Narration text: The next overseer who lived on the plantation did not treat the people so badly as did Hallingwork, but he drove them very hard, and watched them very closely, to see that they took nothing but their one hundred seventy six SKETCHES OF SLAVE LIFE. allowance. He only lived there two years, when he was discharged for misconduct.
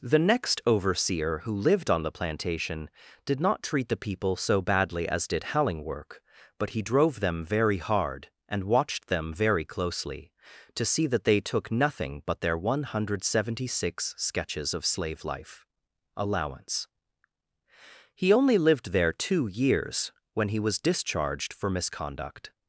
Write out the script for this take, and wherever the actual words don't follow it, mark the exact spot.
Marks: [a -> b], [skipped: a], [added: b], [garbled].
The next overseer who lived on the plantation did not treat the people so badly as did Hallingwork, but he drove them very hard, and watched them very closely, to see that they took nothing but their one hundred seventy six SKETCHES OF SLAVE LIFE. allowance. He only lived there two years, when he was discharged for misconduct.